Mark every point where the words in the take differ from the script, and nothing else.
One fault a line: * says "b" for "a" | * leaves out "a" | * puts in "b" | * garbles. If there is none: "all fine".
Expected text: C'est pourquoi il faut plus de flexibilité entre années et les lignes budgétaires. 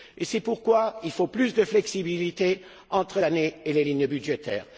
all fine